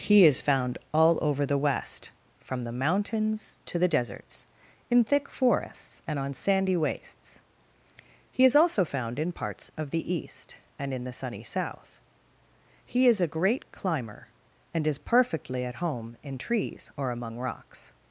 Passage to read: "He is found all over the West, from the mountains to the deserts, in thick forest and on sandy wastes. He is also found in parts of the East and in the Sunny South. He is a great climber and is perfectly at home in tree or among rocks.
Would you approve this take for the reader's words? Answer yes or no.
no